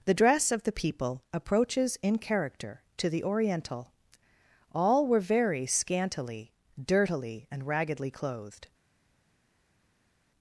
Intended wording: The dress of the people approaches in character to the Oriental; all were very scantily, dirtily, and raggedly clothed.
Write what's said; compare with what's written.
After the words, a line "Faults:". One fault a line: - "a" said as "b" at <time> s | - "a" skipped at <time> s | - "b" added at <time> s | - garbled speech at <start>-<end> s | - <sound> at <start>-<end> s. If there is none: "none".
The dress of the people approaches in character to the Oriental; all were very scantily, dirtily, and raggedly clothed.
Faults:
none